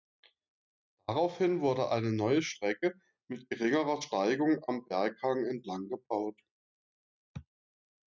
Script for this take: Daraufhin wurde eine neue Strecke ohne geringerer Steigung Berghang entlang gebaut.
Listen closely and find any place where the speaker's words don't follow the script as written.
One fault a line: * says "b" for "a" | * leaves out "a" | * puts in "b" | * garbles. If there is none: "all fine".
* says "mit" for "ohne"
* puts in "am"